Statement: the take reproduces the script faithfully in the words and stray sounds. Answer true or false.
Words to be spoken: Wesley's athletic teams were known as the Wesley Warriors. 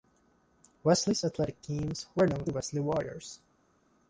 false